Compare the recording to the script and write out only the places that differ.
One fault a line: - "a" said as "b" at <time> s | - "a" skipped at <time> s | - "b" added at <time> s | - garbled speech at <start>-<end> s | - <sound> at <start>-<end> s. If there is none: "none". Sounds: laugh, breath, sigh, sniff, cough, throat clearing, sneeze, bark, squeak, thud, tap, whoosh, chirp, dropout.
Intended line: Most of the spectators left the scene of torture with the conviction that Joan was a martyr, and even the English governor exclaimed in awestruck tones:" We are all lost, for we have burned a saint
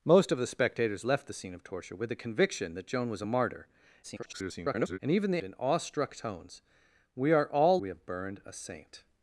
- garbled speech at 4.0-5.0 s
- "English governor exclaimed" skipped at 5.4 s
- "lost for" skipped at 7.8 s